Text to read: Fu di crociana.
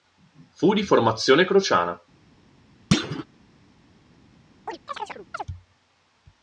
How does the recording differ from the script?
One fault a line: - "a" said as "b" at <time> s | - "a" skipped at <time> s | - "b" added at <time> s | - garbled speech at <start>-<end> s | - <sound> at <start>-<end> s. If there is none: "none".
- "formazione" added at 0.8 s
- thud at 2.9-3.2 s
- chirp at 4.7-5.5 s